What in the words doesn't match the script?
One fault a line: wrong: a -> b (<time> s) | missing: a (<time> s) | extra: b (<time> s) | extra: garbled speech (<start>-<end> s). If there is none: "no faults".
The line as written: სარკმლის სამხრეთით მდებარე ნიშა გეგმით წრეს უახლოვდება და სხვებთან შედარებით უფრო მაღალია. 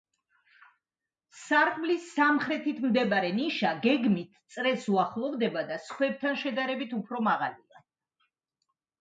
no faults